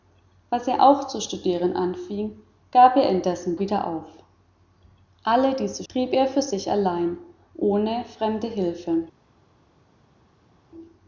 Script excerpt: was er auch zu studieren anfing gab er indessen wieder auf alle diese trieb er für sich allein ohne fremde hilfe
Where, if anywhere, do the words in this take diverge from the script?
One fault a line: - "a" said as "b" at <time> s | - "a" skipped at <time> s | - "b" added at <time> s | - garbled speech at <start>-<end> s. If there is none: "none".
none